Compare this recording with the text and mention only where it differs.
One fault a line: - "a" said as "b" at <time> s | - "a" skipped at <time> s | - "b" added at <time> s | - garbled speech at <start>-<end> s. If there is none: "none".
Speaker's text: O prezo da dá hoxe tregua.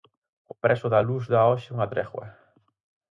- "luz" added at 1.1 s
- "unha" added at 1.7 s